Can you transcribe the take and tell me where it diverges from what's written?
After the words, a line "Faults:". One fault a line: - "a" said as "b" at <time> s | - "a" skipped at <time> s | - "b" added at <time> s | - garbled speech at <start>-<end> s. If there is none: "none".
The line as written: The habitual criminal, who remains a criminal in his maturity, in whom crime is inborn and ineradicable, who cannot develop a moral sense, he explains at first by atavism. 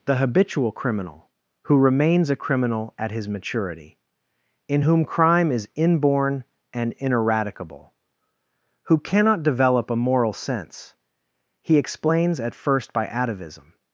The habitual criminal, who remains a criminal at his maturity, in whom crime is inborn and ineradicable, who cannot develop a moral sense, he explains at first by atavism.
Faults:
- "in" said as "at" at 3.0 s